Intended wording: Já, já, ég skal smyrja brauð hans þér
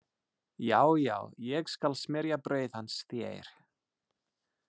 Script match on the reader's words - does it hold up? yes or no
yes